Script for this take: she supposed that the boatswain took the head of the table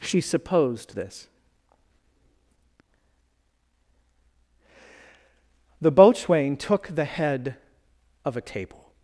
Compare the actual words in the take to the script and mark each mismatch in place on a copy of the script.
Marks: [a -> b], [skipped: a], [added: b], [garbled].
she supposed [that -> this] the boatswain took the head of [the -> a] table